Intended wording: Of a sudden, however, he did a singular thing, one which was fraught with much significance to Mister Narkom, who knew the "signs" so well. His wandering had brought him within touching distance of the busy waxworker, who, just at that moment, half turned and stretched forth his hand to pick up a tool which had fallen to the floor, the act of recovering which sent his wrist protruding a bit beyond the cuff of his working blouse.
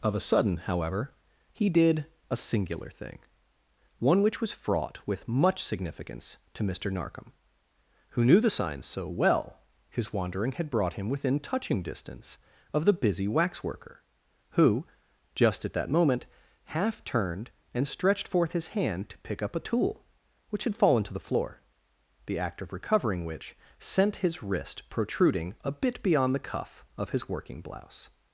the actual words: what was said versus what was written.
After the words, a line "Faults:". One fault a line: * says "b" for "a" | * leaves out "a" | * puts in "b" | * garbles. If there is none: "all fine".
Of a sudden, however, he did a singular thing, one which was fraught with much significance to Mister Narkom, who knew the "signs" so well. His wandering had brought him within touching distance of the busy waxworker, who, just at that moment, half turned and stretched forth his hand to pick up a tool which had fallen to the floor, the act of recovering which sent his wrist protruding a bit beyond the cuff of his working blouse.
Faults:
all fine